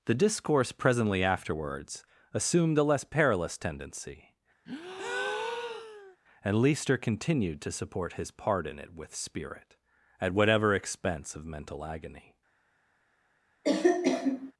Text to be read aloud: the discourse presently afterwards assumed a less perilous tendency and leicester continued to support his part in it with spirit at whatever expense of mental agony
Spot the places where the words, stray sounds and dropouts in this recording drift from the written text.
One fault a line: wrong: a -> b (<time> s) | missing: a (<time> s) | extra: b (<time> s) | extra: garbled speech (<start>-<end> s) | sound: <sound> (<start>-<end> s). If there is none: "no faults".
sound: breath (4.7-6.2 s)
sound: cough (13.6-14.5 s)